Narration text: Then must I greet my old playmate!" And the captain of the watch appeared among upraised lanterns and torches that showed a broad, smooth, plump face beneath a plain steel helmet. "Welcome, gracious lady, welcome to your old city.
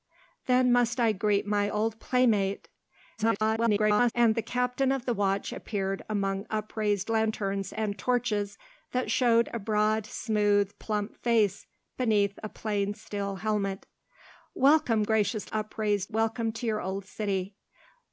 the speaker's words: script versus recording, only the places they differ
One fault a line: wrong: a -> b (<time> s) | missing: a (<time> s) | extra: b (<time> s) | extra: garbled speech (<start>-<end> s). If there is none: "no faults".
extra: garbled speech (3.2-4.1 s)
wrong: lady -> upraised (15.5 s)